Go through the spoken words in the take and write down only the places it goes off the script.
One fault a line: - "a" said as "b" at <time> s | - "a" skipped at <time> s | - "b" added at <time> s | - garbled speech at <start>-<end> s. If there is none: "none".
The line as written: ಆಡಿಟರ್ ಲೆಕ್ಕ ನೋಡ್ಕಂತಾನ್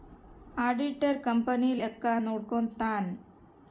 - "ಕಂಪನಿ" added at 1.2 s